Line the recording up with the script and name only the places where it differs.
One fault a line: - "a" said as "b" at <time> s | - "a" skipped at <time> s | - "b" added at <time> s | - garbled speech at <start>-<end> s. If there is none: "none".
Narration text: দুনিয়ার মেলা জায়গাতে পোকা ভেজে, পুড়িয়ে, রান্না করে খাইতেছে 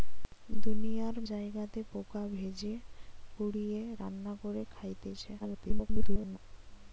- "মেলা" skipped at 1.1 s
- garbled speech at 5.4-6.4 s